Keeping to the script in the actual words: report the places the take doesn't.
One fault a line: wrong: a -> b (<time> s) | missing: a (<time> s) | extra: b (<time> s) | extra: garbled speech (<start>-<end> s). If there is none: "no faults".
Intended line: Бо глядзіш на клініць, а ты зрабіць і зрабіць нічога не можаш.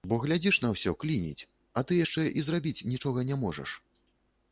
extra: ўсё (0.8 s)
wrong: зрабіць -> яшчэ (2.0 s)